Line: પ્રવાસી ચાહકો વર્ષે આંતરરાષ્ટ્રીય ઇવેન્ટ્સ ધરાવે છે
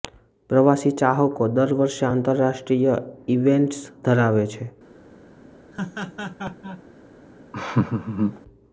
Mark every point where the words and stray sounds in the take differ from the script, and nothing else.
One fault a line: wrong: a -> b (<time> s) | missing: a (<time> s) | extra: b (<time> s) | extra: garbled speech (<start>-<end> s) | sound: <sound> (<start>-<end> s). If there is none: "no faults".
extra: દર (1.5 s)
sound: laugh (5.7-6.8 s)
sound: laugh (7.5-8.4 s)